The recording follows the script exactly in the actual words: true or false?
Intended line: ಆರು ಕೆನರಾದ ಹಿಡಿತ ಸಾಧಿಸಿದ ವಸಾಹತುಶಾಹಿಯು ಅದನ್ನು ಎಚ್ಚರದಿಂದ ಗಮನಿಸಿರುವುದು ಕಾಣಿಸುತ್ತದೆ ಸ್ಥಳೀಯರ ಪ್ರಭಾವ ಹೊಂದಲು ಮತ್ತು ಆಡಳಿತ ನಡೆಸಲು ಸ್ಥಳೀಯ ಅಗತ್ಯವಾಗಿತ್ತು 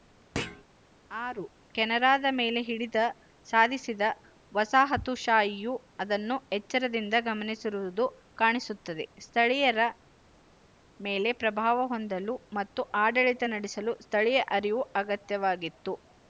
false